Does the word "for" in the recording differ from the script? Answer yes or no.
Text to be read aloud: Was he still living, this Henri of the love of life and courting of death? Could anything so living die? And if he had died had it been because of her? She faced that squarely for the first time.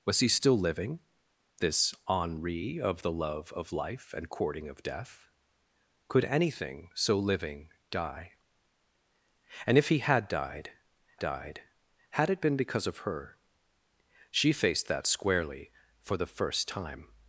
no